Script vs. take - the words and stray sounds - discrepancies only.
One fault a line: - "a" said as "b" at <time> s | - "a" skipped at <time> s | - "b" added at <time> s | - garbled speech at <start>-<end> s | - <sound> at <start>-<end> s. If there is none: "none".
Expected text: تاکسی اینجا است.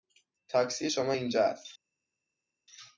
- "شما" added at 0.9 s